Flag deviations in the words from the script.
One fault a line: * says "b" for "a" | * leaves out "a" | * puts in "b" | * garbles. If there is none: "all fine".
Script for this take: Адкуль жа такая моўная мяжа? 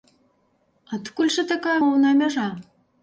all fine